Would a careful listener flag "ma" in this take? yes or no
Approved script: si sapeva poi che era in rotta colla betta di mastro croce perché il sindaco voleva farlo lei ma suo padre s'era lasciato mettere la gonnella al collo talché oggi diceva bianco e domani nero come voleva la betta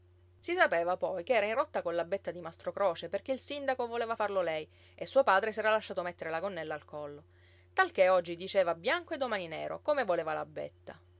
yes